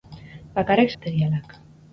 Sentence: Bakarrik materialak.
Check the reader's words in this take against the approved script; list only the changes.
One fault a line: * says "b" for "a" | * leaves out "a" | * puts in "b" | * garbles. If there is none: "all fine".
all fine